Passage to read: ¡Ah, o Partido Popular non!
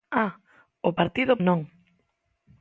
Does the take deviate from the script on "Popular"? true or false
true